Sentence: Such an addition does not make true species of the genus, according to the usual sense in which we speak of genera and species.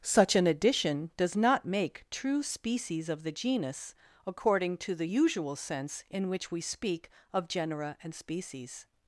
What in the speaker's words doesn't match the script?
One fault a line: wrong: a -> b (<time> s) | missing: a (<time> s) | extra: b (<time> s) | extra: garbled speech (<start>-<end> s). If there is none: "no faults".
no faults